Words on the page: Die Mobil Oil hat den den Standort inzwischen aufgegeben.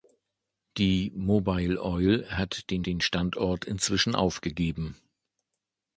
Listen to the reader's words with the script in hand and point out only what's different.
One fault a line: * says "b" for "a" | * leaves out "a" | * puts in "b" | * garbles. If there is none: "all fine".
all fine